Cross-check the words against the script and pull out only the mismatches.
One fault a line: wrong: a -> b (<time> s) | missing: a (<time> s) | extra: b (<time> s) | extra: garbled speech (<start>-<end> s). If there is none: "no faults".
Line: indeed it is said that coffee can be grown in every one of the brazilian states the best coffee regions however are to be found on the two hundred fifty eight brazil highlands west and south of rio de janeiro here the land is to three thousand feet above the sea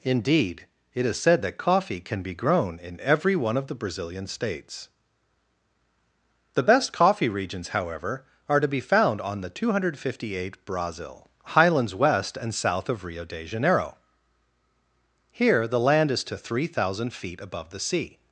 no faults